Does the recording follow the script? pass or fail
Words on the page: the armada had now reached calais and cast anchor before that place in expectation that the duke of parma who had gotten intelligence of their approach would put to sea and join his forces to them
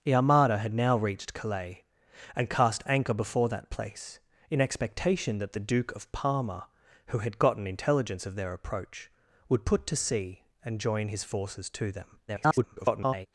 fail